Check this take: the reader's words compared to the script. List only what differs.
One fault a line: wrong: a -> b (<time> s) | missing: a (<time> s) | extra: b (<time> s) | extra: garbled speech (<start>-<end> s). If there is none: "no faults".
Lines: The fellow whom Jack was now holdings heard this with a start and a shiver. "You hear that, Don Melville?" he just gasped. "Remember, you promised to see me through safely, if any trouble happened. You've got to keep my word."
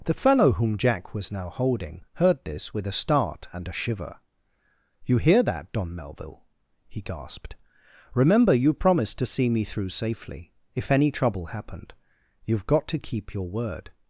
wrong: holdings -> holding (1.5 s)
missing: just (7.0 s)
wrong: my -> your (13.3 s)